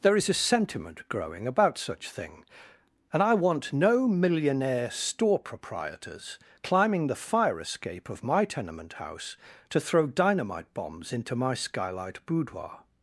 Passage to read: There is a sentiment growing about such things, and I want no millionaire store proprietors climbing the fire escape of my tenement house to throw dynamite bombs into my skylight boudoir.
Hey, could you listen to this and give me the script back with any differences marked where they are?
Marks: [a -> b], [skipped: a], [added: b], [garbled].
There is a sentiment growing about such [things, -> thing] and I want no millionaire store proprietors climbing the fire escape of my tenement house to throw dynamite bombs into my skylight boudoir.